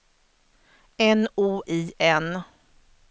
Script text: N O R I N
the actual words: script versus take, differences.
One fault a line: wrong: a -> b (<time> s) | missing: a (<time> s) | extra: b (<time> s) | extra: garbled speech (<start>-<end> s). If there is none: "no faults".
missing: R (1.6 s)